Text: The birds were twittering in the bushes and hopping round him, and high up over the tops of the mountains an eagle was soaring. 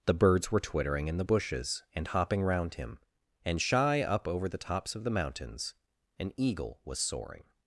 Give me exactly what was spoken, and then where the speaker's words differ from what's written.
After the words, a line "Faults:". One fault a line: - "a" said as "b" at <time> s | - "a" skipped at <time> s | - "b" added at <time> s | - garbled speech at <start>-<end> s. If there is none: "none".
The birds were twittering in the bushes and hopping round him, and shy up over the tops of the mountains an eagle was soaring.
Faults:
- "high" said as "shy" at 3.6 s